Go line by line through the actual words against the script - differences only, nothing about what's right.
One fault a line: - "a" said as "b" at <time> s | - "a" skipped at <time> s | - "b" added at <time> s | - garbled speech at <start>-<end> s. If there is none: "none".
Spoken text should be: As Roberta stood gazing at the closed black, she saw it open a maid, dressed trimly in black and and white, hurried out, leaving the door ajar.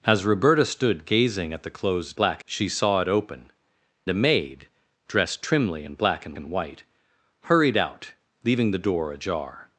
none